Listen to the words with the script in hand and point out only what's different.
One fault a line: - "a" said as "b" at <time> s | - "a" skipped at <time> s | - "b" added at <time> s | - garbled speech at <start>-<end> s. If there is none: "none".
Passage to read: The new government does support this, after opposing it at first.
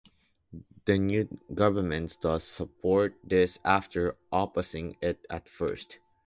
none